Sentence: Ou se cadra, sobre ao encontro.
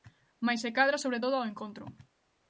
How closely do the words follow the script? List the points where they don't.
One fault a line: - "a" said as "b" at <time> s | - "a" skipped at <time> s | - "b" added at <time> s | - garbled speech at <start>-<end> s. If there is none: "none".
- "Ou" said as "Mais" at 0.5 s
- "todo" added at 1.2 s